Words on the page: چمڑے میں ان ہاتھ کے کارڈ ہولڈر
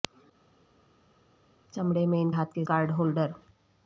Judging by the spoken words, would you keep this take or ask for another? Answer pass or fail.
pass